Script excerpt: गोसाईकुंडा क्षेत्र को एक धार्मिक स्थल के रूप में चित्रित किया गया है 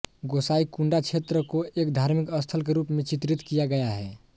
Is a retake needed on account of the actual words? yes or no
no